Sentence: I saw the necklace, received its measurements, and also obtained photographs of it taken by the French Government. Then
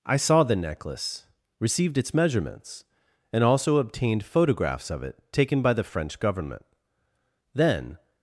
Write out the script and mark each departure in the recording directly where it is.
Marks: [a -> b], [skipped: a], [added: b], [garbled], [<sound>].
I saw the necklace, received its measurements, and also obtained photographs of it taken by the French Government. Then